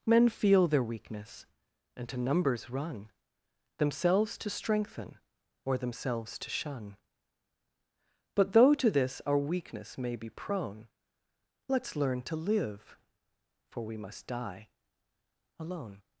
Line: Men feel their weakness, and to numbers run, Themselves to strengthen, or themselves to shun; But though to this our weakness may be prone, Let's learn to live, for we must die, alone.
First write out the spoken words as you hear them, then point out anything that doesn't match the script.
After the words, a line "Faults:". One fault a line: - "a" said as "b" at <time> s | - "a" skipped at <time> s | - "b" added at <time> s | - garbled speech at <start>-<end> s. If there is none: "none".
Men feel their weakness, and to numbers run, Themselves to strengthen, or themselves to shun; But though to this our weakness may be prone, Let's learn to live, for we must die, alone.
Faults:
none